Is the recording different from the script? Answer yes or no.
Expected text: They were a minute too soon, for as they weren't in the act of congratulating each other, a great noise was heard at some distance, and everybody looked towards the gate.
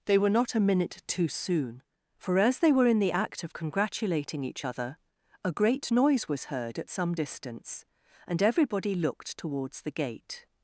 yes